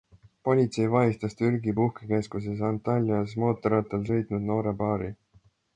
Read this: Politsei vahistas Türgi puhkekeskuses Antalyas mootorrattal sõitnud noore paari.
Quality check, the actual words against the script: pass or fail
pass